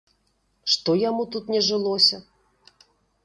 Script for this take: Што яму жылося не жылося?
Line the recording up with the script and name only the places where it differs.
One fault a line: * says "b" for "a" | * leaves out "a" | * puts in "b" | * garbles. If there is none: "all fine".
* says "тут" for "жылося"